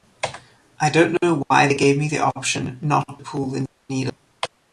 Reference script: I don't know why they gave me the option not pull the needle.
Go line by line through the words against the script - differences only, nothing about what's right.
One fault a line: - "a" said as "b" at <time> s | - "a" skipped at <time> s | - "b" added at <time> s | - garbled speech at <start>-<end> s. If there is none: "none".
none